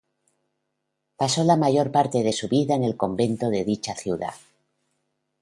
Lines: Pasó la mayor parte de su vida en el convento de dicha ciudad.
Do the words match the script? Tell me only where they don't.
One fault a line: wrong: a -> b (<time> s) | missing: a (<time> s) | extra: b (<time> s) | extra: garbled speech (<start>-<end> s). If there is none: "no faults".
no faults